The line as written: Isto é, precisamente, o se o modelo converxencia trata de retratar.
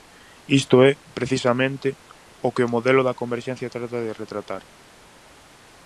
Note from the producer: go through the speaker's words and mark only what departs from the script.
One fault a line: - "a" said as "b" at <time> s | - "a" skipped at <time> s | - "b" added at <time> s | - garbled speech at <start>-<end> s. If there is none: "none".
- "se" said as "que" at 2.5 s
- "da" added at 3.1 s